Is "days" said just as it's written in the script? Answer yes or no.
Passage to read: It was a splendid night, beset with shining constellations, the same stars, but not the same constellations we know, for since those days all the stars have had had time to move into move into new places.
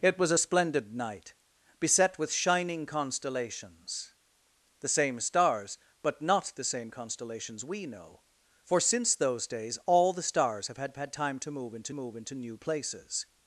yes